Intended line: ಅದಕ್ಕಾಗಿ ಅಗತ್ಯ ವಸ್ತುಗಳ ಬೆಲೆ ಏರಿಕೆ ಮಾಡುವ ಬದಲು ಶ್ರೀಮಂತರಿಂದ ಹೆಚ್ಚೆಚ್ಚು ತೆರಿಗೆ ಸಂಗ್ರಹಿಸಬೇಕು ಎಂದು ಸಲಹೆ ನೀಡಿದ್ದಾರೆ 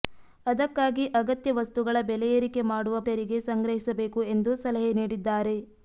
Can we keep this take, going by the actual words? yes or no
no